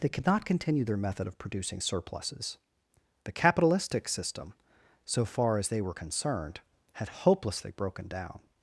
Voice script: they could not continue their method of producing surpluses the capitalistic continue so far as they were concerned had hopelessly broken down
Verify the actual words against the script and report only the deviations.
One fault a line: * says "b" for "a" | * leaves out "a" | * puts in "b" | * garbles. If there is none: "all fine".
* says "system" for "continue"